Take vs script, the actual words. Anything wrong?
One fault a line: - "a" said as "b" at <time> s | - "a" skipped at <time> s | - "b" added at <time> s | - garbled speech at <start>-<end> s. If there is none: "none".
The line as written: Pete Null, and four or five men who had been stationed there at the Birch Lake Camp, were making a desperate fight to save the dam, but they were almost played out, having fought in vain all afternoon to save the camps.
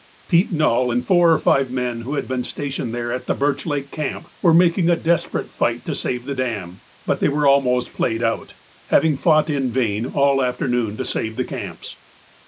none